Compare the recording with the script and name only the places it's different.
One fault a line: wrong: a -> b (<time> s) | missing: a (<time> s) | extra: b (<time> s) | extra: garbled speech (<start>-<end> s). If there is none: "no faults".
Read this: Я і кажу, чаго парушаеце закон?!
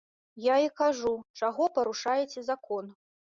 no faults